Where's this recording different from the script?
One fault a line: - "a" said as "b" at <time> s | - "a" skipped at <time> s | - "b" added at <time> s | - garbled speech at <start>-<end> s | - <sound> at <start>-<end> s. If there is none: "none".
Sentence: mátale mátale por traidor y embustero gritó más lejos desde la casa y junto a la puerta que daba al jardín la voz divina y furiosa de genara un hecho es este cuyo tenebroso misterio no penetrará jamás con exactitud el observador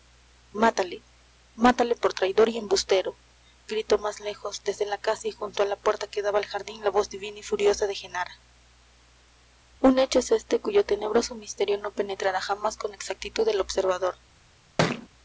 - thud at 14.8-15.1 s